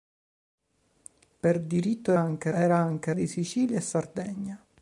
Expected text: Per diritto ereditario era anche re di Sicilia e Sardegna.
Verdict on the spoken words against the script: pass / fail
fail